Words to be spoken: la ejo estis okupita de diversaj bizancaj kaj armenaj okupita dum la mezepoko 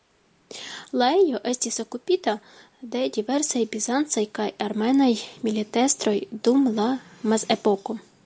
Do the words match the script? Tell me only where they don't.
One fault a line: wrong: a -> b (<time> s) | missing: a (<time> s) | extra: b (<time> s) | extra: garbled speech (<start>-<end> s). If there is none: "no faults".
wrong: okupita -> militestroj (5.5 s)